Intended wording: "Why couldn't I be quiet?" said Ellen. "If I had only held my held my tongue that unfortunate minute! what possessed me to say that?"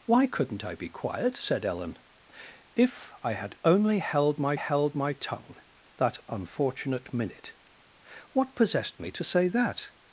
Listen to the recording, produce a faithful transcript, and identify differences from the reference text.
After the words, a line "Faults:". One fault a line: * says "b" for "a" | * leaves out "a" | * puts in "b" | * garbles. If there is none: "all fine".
"Why couldn't I be quiet?" said Ellen. "If I had only held my held my tongue that unfortunate minute! what possessed me to say that?"
Faults:
all fine